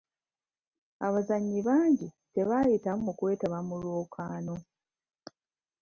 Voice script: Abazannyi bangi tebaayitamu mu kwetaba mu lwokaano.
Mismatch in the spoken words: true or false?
false